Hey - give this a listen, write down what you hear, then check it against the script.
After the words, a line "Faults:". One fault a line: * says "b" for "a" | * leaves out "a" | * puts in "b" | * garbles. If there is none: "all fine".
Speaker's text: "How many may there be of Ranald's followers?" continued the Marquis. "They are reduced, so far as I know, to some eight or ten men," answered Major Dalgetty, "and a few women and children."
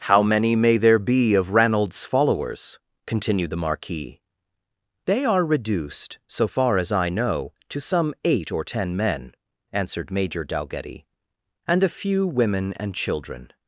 "How many may there be of Ranald's followers?" continued the Marquis. "They are reduced, so far as I know, to some eight or ten men," answered Major Dalgetty, "and a few women and children."
Faults:
all fine